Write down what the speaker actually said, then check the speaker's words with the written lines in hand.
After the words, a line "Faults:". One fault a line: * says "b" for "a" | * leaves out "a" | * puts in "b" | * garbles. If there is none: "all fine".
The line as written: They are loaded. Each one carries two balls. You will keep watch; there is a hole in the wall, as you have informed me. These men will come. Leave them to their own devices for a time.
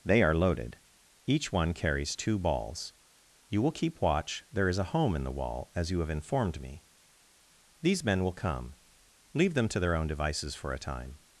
They are loaded. Each one carries two balls. You will keep watch; there is a home in the wall, as you have informed me. These men will come. Leave them to their own devices for a time.
Faults:
* says "home" for "hole"